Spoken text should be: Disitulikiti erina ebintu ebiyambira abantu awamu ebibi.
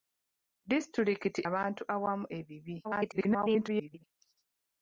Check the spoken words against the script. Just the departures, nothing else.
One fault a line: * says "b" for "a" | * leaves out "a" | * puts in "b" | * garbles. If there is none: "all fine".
* leaves out "erina ebintu ebiyambira"
* garbles